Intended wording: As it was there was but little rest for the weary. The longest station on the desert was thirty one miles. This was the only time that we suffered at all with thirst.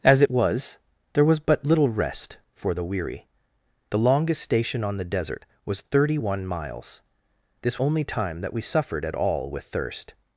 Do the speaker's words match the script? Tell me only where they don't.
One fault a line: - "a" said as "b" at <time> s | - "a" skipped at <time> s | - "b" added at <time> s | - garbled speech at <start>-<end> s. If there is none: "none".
- "was the" skipped at 7.8 s